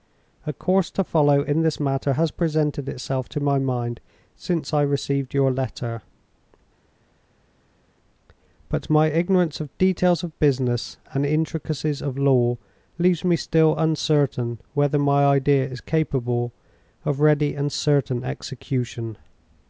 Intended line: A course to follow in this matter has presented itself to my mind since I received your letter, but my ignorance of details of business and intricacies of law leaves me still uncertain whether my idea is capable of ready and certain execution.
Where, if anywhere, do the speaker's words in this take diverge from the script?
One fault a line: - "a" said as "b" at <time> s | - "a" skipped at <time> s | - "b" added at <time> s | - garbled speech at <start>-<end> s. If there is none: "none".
none